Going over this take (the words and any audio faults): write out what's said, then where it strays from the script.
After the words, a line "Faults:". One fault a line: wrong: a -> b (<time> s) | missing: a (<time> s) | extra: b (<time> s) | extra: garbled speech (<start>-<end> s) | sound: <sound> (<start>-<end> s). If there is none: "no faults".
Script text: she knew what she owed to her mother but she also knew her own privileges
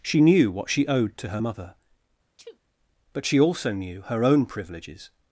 she knew what she owed to her mother but she also knew her own privileges
Faults:
sound: sneeze (2.4-2.6 s)